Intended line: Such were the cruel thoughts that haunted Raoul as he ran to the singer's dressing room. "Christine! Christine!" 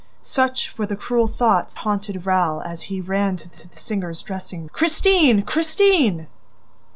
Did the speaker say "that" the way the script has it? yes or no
no